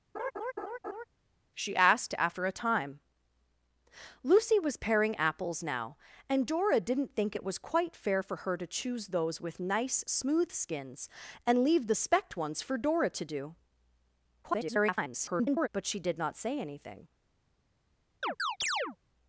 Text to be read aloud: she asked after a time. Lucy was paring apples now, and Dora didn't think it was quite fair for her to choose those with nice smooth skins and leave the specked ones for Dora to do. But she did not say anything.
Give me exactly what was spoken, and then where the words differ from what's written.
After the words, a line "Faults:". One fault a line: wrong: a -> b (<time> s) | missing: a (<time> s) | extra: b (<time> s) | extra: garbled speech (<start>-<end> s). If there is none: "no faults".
she asked after a time. Lucy was paring apples now, and Dora didn't think it was quite fair for her to choose those with nice smooth skins and leave the specked ones for Dora to do. [garbled] But she did not say anything.
Faults:
extra: garbled speech (14.4-15.7 s)